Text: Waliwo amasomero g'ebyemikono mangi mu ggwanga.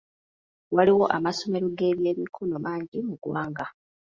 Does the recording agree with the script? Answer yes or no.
yes